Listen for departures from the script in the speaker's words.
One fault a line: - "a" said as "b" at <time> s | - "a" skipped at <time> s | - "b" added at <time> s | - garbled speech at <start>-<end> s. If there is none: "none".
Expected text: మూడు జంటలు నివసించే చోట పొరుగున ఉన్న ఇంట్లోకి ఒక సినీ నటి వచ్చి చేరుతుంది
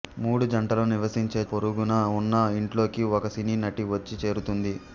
- "చోట" skipped at 1.4 s